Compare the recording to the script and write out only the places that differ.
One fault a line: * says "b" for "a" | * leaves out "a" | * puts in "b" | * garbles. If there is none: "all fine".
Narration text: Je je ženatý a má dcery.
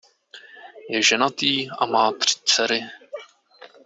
* leaves out "je"
* puts in "tři"